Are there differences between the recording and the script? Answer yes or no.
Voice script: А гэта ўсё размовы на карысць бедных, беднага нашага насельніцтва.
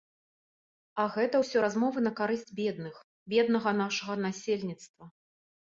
no